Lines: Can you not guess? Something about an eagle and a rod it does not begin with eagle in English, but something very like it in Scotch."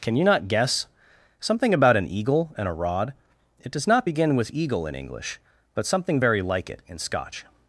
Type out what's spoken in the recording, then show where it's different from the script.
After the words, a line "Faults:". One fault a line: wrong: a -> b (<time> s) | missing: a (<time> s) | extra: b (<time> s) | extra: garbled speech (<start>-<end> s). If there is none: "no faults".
Can you not guess? Something about an eagle and a rod it does not begin with eagle in English, but something very like it in Scotch."
Faults:
no faults